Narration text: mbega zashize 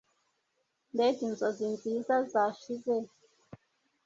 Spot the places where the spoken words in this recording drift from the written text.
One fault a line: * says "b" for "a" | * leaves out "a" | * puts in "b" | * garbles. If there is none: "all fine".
* puts in "inzozi nziza"